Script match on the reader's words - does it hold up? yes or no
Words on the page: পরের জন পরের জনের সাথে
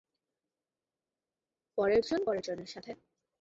yes